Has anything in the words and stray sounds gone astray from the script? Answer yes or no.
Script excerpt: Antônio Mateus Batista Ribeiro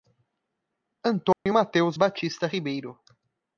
yes